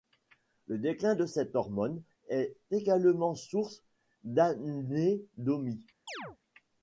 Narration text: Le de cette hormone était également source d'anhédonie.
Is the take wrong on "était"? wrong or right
wrong